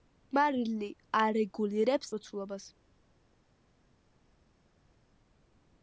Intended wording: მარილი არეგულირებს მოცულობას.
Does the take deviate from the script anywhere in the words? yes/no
no